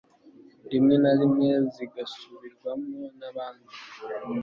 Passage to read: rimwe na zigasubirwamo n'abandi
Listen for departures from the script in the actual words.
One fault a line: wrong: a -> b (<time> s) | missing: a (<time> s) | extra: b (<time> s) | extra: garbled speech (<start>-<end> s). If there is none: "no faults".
extra: rimwe (1.2 s)